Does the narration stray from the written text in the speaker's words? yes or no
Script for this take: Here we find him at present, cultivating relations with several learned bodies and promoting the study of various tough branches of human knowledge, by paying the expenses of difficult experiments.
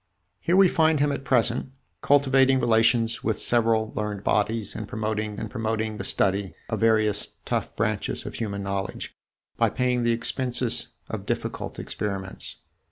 yes